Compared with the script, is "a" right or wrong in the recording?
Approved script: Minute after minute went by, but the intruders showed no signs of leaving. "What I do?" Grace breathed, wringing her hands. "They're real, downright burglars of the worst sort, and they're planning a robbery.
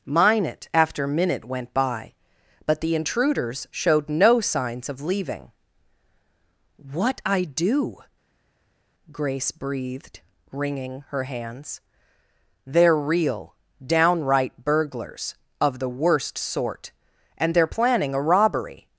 right